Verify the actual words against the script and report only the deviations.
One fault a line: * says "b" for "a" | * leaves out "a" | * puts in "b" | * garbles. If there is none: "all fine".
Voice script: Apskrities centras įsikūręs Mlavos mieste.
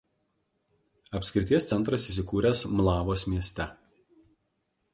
all fine